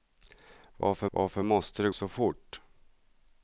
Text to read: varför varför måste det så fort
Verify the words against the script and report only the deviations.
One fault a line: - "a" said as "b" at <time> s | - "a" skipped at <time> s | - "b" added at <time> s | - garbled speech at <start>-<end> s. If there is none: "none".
none